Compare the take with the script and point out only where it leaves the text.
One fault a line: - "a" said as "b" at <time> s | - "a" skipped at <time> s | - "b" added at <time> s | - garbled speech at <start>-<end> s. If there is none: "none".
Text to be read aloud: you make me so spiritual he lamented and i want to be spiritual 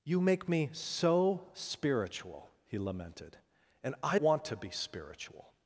none